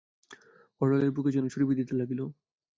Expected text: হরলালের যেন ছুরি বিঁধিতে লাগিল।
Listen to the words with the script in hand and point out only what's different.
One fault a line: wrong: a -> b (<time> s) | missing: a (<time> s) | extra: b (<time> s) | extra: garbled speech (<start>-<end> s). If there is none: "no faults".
extra: বুকে (1.1 s)